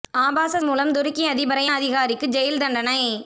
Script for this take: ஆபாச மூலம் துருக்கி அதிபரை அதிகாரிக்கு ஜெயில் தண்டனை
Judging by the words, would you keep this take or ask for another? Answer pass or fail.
pass